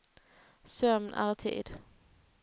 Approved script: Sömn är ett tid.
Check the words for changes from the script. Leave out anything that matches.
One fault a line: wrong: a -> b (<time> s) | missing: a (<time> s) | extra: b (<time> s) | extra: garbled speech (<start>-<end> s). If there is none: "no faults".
no faults